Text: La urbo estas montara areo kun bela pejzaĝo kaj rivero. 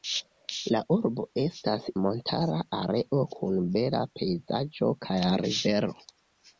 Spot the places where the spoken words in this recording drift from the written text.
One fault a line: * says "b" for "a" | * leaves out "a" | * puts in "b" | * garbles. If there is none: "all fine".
all fine